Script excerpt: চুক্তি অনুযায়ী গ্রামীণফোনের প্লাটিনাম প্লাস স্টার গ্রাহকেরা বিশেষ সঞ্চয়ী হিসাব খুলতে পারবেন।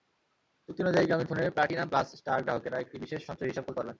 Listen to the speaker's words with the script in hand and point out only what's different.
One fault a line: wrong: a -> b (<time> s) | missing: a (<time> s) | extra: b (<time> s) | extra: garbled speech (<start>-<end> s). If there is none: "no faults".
extra: একটি (2.8 s)